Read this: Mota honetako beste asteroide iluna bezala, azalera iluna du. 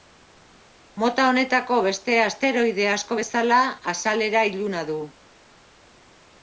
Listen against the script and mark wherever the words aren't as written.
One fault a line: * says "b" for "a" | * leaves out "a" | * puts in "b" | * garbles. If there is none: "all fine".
* says "asko" for "iluna"